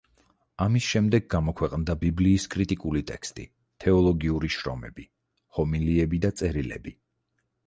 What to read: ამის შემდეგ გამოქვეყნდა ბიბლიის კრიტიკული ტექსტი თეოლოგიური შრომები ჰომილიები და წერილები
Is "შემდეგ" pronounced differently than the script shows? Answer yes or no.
no